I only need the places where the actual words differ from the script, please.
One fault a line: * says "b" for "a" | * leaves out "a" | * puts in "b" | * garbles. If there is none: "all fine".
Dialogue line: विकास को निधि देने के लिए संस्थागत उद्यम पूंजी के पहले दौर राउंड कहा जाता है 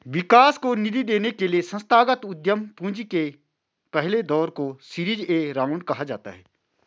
* puts in "को सीरीज ए"